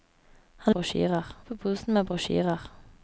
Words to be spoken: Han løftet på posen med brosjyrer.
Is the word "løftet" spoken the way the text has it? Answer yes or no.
no